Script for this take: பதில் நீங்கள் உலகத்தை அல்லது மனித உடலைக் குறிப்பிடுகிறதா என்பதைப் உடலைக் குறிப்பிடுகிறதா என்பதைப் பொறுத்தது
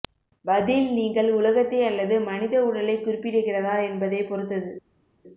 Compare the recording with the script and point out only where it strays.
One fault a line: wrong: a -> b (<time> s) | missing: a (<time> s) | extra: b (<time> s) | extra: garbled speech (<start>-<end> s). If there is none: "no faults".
missing: உடலைக் குறிப்பிடுகிறதா என்பதைப் (4.3 s)